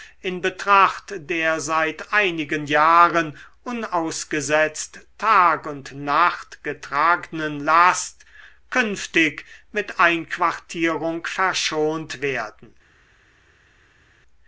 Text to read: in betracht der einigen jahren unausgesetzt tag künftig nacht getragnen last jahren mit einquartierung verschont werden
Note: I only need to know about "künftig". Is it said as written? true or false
false